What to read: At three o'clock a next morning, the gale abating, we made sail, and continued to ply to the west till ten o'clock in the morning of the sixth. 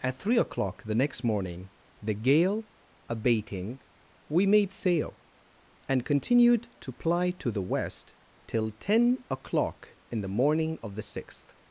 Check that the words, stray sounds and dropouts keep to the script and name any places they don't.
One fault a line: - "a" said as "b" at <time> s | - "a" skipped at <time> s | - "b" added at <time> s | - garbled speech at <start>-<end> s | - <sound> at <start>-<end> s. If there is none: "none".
- "a" said as "the" at 0.8 s